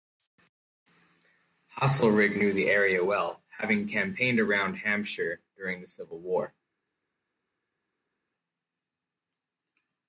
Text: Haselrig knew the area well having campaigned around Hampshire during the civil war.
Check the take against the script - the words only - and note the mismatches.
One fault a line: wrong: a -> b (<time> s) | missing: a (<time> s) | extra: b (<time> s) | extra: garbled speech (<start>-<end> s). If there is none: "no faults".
no faults